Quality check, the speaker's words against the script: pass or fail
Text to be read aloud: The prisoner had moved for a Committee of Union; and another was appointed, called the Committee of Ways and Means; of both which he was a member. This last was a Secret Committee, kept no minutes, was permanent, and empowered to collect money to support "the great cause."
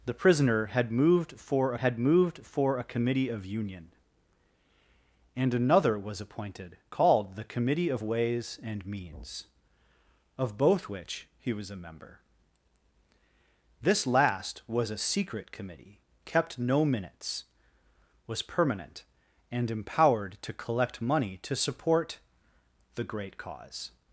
fail